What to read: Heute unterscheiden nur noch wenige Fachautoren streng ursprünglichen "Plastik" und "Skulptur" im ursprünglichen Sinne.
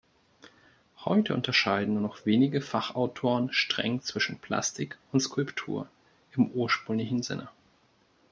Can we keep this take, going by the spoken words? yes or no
no